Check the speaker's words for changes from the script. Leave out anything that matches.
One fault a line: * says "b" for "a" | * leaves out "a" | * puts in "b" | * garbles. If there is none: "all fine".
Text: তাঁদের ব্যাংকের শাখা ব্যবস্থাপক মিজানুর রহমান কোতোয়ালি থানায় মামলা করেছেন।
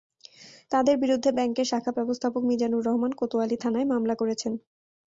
* puts in "বিরুদ্ধে"